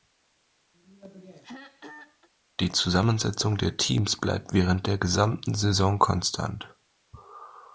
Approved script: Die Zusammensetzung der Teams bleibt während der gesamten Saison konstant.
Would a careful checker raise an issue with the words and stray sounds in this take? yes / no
yes